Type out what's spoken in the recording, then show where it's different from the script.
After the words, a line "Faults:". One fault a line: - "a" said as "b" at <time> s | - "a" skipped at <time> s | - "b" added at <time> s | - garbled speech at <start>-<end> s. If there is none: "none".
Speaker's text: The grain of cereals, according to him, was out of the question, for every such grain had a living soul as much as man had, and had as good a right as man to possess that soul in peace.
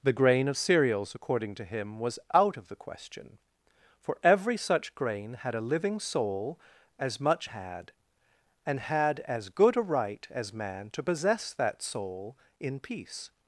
The grain of cereals, according to him, was out of the question, for every such grain had a living soul as much had, and had as good a right as man to possess that soul in peace.
Faults:
- "as man" skipped at 7.5 s